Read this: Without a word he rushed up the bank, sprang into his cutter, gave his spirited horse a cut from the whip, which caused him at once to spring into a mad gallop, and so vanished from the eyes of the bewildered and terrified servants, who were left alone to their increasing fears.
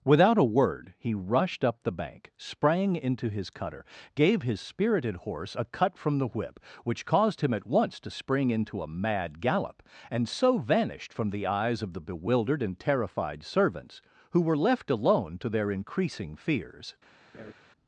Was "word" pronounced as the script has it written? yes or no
yes